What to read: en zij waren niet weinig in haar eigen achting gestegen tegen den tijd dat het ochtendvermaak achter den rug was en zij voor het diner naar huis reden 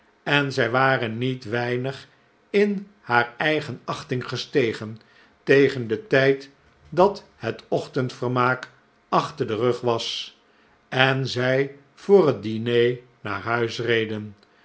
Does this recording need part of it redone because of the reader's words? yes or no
no